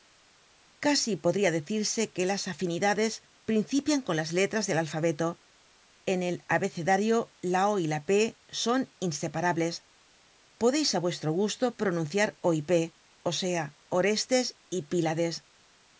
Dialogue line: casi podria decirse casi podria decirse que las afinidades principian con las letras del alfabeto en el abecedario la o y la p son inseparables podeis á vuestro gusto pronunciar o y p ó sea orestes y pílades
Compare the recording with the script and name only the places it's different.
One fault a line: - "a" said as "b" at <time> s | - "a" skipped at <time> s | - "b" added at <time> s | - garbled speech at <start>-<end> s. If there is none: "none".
- "casi podria decirse" skipped at 2.1 s